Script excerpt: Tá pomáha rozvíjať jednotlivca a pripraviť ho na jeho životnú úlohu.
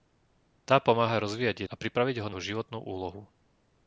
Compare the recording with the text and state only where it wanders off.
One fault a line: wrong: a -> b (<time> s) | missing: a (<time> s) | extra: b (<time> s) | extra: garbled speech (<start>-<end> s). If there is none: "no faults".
missing: jednotlivca (1.7 s)
missing: na (2.3 s)